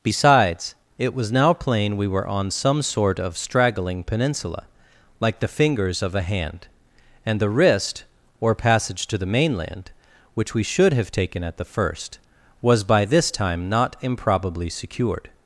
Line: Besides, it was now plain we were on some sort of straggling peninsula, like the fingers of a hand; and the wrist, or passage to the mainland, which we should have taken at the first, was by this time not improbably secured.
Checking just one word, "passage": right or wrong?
right